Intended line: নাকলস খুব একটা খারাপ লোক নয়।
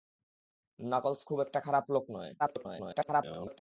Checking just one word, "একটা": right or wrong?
right